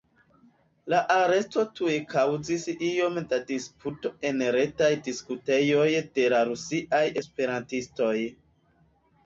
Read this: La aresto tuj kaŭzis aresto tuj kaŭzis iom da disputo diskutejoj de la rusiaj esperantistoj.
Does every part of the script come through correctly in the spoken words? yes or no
no